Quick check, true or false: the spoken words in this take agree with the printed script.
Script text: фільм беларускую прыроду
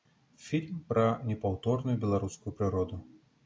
false